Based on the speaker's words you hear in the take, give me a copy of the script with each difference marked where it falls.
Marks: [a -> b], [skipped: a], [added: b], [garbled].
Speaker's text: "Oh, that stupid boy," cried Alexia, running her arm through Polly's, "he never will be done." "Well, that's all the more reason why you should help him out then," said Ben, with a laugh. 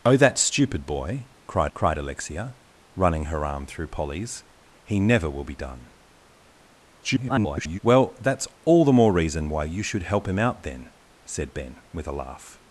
"Oh, that stupid boy," cried [added: cried] Alexia, running her arm through Polly's, "he never will be done." [garbled] "Well, that's all the more reason why you should help him out then," said Ben, with a laugh.